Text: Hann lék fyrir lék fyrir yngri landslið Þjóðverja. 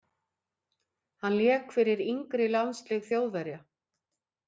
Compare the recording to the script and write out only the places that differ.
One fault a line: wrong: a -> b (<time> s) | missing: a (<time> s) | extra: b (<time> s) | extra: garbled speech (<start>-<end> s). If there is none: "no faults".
missing: lék fyrir (2.0 s)